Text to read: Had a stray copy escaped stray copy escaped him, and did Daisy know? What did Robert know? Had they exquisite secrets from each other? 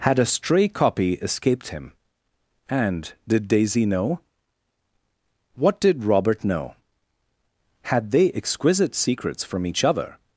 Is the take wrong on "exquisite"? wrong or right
right